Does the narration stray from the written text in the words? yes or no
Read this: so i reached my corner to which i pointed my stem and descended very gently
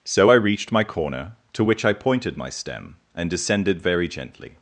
no